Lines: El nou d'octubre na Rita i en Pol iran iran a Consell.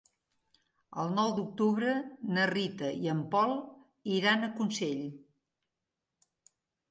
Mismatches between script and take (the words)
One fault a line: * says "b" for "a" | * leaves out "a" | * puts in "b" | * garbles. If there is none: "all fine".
* leaves out "iran"